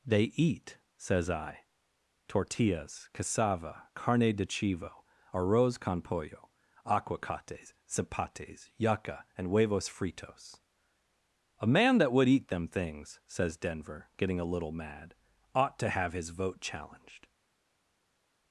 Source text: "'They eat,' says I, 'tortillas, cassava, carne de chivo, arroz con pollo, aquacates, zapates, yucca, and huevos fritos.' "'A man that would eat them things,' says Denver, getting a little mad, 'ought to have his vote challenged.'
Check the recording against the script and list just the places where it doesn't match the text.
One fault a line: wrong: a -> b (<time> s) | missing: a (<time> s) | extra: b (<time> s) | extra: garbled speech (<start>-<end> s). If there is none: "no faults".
no faults